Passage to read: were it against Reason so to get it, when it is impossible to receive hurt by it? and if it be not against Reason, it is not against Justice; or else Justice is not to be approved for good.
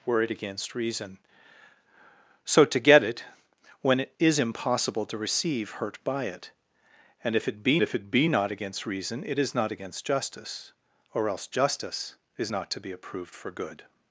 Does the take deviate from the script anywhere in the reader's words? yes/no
yes